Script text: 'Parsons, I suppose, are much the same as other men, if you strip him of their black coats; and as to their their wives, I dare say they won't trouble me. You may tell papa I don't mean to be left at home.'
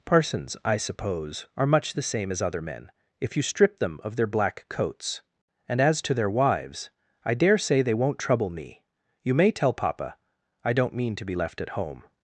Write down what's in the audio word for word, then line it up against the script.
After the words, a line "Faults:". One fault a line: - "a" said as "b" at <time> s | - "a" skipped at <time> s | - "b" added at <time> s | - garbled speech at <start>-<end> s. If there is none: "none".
'Parsons, I suppose, are much the same as other men, if you strip them of their black coats; and as to their wives, I dare say they won't trouble me. You may tell papa I don't mean to be left at home.'
Faults:
- "him" said as "them" at 3.8 s
- "their" skipped at 6.3 s